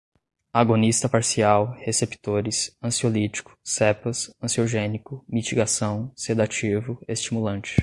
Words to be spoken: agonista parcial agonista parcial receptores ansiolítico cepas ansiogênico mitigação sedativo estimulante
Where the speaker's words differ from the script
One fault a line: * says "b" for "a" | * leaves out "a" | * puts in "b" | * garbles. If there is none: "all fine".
* leaves out "agonista parcial"